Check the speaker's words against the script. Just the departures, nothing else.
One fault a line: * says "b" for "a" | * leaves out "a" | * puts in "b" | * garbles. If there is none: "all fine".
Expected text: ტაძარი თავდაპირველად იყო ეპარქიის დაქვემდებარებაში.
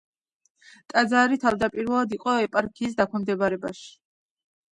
all fine